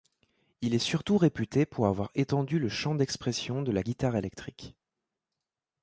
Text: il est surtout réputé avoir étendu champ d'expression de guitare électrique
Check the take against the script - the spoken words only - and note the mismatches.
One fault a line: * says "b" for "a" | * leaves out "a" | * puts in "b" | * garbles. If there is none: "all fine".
* puts in "pour"
* puts in "le"
* puts in "la"